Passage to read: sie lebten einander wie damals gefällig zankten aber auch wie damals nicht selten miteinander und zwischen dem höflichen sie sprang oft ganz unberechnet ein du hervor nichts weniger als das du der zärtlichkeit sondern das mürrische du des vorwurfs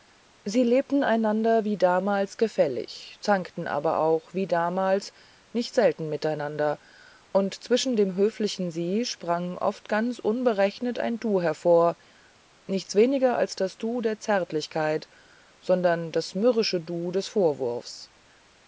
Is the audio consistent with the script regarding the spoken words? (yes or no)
yes